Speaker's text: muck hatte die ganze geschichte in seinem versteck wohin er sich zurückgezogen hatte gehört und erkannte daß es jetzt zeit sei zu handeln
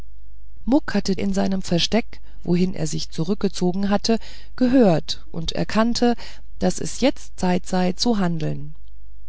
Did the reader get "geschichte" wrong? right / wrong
wrong